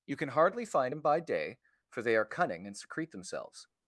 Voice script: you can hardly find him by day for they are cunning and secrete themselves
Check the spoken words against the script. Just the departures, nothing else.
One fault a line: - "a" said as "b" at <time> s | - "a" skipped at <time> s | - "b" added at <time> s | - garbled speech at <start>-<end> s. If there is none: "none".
none